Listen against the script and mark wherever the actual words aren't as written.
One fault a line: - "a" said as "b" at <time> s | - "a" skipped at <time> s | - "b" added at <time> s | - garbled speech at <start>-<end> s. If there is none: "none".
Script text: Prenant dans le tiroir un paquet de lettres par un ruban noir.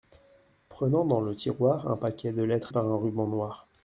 none